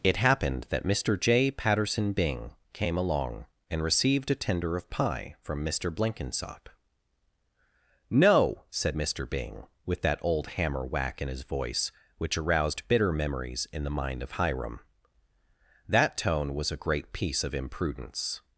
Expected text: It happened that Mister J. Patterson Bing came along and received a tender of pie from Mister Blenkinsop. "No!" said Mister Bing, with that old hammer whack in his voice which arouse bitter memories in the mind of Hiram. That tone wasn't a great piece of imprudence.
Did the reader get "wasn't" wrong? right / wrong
wrong